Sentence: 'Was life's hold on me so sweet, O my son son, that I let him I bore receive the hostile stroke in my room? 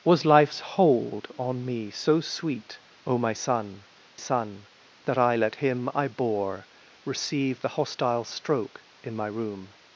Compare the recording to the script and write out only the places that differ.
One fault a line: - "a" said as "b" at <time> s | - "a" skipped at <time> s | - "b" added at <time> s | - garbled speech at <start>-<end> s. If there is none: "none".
none